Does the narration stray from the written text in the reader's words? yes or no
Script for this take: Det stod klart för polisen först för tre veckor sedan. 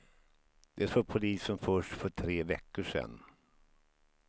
yes